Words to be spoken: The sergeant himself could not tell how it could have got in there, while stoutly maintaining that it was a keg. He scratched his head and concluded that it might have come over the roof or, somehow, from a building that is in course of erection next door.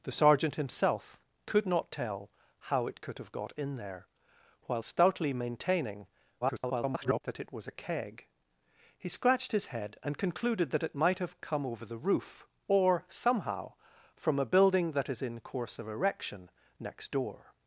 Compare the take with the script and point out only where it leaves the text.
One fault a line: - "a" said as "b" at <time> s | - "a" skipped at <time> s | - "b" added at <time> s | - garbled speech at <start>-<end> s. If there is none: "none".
- garbled speech at 6.4-7.2 s